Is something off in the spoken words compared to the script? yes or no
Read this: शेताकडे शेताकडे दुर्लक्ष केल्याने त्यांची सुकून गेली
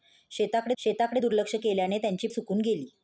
no